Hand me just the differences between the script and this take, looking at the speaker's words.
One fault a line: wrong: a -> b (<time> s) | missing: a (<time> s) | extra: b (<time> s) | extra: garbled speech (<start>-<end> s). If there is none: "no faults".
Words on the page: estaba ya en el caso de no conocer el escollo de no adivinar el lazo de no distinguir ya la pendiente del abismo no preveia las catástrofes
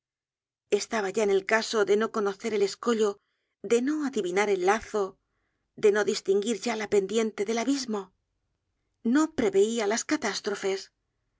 no faults